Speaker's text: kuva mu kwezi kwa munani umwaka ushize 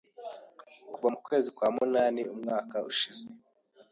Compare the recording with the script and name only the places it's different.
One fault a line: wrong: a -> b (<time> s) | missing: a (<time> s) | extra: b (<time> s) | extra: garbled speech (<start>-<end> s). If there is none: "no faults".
no faults